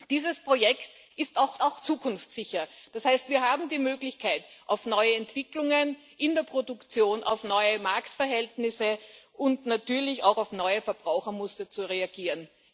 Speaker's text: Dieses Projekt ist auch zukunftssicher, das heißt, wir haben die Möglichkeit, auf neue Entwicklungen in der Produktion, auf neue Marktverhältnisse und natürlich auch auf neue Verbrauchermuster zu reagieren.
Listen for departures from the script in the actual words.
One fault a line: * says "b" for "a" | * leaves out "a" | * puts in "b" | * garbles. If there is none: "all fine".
* puts in "auch"